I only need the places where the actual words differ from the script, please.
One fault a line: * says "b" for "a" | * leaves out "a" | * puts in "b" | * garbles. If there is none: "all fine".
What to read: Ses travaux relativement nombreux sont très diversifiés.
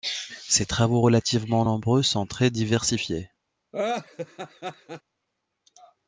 all fine